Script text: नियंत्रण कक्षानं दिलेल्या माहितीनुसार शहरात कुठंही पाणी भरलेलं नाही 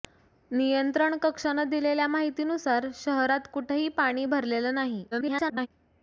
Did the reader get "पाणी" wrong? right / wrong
right